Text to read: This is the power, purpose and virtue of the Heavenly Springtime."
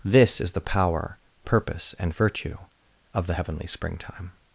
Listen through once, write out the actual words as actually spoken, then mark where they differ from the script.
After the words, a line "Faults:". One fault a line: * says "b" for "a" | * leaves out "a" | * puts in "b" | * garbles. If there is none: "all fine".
This is the power, purpose and virtue of the Heavenly Springtime."
Faults:
all fine